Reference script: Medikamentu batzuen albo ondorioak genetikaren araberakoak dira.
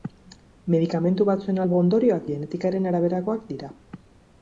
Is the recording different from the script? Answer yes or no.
no